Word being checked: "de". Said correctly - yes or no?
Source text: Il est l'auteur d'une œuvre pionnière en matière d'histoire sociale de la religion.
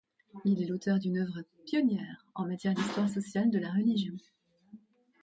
yes